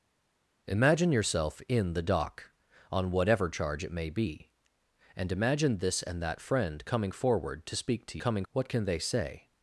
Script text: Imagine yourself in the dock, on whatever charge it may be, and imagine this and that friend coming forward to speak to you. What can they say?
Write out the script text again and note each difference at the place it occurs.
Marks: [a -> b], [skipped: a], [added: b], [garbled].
Imagine yourself in the dock, on whatever charge it may be, and imagine this and that friend coming forward to speak to [you. -> coming] What can they say?